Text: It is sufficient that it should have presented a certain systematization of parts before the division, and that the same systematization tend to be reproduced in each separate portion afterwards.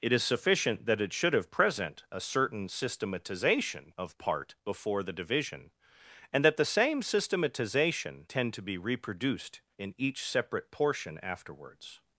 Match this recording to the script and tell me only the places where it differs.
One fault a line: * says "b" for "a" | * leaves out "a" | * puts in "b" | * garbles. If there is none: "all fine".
* says "present" for "presented"
* says "part" for "parts"